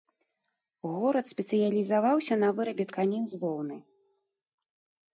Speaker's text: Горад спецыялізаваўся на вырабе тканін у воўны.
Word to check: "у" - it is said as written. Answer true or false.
false